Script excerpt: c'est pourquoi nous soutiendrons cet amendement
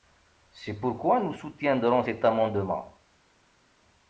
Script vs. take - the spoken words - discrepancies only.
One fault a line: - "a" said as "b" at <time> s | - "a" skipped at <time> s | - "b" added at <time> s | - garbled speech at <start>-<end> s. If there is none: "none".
none